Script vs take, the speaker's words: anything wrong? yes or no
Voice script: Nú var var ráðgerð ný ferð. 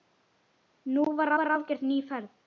no